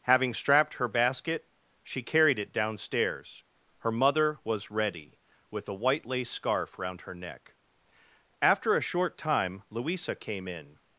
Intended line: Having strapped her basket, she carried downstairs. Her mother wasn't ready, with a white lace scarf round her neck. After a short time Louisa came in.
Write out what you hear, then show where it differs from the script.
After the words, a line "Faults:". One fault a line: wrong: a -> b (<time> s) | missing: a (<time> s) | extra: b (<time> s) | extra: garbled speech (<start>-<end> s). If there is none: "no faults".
Having strapped her basket, she carried it downstairs. Her mother was ready, with a white lace scarf round her neck. After a short time Louisa came in.
Faults:
extra: it (2.4 s)
wrong: wasn't -> was (4.4 s)